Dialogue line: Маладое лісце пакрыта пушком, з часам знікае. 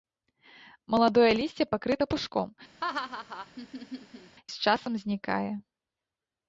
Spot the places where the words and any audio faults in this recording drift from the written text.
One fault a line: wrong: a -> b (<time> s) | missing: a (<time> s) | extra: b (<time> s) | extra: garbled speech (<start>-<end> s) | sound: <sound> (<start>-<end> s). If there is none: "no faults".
sound: laugh (2.8-4.4 s)